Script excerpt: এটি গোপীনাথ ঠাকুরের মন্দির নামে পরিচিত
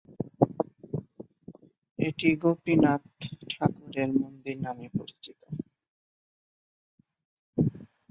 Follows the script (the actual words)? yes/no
yes